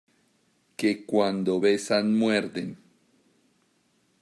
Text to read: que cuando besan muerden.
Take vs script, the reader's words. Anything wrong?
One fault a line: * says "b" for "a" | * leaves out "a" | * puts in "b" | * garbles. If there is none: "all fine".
all fine